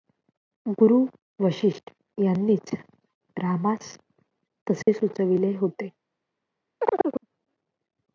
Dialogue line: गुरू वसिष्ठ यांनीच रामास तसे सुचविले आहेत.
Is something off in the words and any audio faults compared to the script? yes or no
yes